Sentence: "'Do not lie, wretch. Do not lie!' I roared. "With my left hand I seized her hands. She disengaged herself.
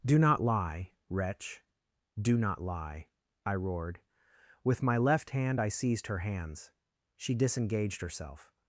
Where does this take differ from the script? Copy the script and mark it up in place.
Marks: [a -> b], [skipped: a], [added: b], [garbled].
"'Do not lie, wretch. Do not lie!' I roared. "With my left hand I seized her hands. She disengaged herself.